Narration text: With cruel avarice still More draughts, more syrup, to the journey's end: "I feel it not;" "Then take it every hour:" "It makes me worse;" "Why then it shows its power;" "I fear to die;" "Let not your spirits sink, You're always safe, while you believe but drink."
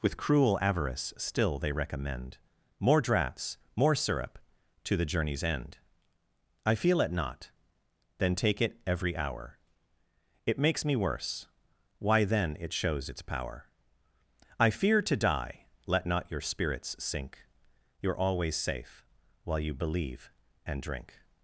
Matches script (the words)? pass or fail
fail